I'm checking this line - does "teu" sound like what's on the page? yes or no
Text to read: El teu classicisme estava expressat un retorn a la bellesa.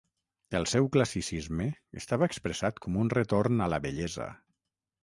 no